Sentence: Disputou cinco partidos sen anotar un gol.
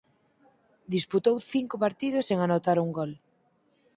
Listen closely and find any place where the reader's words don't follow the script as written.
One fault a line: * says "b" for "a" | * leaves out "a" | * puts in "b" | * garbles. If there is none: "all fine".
all fine